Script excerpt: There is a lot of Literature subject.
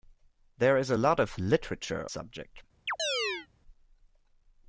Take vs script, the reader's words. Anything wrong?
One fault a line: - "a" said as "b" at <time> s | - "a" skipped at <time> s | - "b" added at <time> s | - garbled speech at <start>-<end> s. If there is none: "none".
none